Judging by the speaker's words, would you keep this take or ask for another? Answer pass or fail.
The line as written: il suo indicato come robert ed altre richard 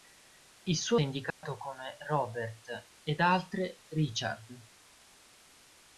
pass